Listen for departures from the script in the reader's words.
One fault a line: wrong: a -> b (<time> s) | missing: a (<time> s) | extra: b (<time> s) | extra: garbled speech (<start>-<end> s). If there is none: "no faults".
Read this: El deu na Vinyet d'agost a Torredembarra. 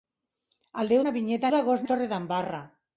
no faults